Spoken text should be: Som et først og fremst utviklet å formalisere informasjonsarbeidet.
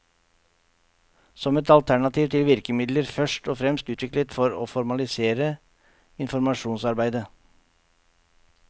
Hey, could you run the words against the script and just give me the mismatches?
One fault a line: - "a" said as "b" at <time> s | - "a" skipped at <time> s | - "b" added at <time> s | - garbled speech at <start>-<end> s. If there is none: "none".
- "alternativ til virkemidler" added at 1.8 s
- "for" added at 4.4 s